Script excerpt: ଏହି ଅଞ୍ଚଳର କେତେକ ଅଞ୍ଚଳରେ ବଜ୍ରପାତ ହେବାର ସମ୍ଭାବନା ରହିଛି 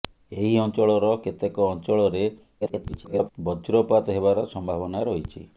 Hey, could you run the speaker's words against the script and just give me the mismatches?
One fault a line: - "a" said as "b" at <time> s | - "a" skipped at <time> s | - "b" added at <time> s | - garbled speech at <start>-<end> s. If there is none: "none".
- garbled speech at 2.6-3.3 s